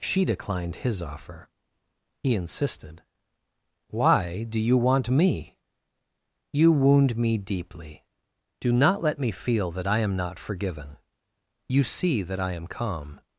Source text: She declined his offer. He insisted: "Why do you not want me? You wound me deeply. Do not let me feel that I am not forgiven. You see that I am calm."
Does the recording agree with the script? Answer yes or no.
no